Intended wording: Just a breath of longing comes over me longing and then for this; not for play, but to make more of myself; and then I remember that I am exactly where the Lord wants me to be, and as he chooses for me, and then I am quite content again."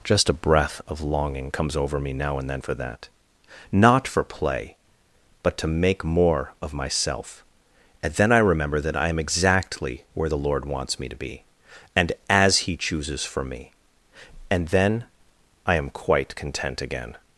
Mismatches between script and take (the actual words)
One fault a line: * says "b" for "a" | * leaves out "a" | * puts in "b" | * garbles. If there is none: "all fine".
* says "now" for "longing"
* says "that" for "this"